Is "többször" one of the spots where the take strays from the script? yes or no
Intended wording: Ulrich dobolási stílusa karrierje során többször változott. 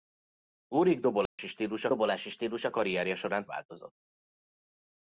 yes